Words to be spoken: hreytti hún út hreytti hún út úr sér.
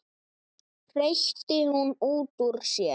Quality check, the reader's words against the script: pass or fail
fail